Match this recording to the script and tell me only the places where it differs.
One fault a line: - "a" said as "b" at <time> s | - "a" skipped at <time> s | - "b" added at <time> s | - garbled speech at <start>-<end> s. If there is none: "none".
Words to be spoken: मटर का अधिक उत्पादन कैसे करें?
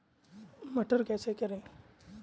- "का अधिक उत्पादन" skipped at 1.0 s